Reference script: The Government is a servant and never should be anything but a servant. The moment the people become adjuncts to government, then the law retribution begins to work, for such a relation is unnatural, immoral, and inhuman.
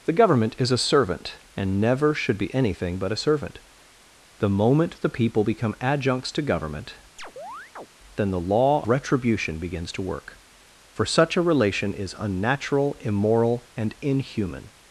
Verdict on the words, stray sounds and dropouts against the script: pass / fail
fail